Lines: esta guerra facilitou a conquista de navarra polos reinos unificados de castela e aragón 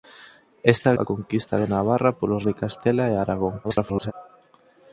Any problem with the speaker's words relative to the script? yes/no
yes